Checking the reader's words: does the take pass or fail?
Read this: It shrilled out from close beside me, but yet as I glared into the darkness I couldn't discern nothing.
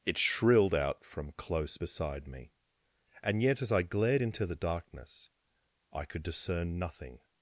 fail